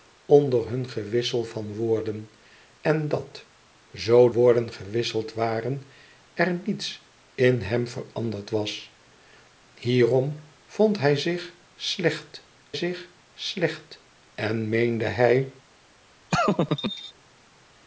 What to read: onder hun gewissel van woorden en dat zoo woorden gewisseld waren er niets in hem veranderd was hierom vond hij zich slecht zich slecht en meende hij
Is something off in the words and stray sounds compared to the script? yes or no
yes